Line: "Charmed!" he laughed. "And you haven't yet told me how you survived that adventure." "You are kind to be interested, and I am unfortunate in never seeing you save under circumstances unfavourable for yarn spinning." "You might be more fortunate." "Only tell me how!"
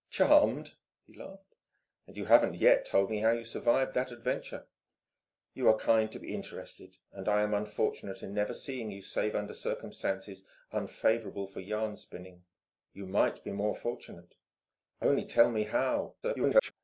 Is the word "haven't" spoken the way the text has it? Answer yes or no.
yes